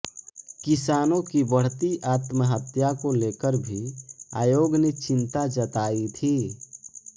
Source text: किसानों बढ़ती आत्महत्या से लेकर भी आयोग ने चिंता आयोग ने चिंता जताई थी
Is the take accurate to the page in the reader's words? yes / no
no